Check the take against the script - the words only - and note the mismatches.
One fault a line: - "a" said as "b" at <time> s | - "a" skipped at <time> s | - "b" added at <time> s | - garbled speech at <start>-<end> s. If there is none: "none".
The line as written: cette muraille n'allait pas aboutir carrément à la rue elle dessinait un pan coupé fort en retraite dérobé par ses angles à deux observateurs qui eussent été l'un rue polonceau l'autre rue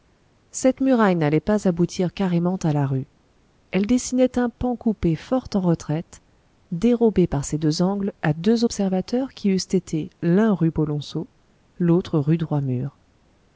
- "deux" added at 7.6 s